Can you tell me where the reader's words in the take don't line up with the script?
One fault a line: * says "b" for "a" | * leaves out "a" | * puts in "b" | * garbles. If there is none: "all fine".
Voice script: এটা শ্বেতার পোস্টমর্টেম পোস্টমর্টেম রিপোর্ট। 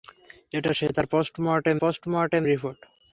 all fine